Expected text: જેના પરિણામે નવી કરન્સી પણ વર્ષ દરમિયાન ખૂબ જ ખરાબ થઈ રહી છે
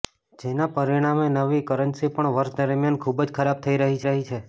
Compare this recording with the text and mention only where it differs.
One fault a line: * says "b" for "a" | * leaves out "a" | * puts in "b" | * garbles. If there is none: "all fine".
* puts in "રહી"